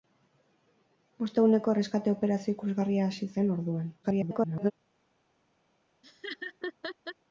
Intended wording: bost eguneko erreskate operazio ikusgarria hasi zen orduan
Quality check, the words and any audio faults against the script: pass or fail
fail